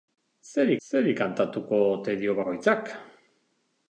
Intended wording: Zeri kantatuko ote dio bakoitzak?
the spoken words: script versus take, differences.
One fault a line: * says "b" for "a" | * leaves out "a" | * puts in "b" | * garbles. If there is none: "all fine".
* puts in "zeri"